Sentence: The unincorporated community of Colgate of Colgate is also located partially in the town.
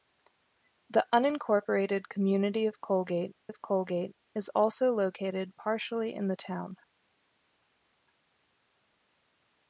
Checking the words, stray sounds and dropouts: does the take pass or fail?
pass